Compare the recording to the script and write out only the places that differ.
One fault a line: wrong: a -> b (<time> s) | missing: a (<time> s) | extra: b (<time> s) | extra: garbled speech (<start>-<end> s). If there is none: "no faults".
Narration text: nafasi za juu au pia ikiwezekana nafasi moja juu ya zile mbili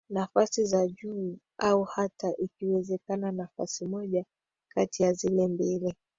wrong: pia -> hata (1.8 s)
wrong: juu -> kati (4.7 s)